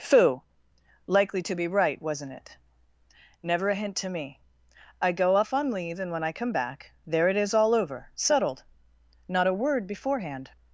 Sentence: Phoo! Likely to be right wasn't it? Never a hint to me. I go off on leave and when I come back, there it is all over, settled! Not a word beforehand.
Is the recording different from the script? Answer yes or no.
no